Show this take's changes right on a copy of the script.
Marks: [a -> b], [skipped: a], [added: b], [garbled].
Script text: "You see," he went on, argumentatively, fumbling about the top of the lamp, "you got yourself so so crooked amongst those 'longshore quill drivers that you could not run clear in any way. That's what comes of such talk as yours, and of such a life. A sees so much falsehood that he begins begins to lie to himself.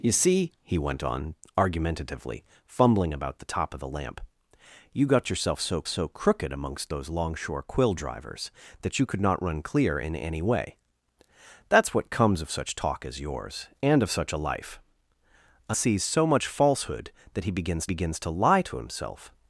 "You see," he went on, argumentatively, fumbling about the top of the lamp, "you got yourself so so crooked amongst those 'longshore quill drivers that you could not run clear in any way. That's what comes of such talk as yours, and of such a life. A sees so much falsehood that he begins begins to lie to himself.